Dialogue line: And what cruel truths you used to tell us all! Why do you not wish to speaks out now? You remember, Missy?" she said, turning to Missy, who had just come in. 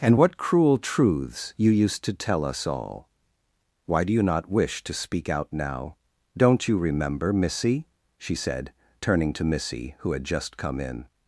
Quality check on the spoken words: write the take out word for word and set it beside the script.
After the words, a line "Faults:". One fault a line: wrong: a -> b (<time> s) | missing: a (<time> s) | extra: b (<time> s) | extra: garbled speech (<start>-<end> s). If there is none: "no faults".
And what cruel truths you used to tell us all! Why do you not wish to speak out now? Don't you remember, Missy?" she said, turning to Missy, who had just come in.
Faults:
wrong: speaks -> speak (4.9 s)
extra: Don't (6.4 s)